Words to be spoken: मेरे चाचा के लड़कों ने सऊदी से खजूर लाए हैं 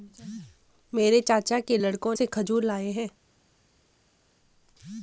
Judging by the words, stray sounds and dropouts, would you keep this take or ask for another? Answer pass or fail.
fail